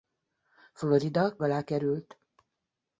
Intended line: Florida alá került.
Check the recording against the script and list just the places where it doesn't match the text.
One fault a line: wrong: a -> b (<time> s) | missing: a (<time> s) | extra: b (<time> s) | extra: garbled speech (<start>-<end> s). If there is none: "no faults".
no faults